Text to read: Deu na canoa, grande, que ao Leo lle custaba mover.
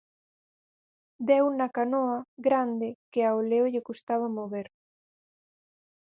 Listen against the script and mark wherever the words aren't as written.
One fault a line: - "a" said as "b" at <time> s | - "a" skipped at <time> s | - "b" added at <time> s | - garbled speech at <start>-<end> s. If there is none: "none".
none